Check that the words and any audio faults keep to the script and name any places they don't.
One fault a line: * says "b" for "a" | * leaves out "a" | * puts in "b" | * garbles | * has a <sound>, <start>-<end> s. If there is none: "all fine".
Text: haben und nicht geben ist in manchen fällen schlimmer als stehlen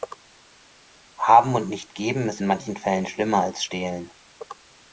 all fine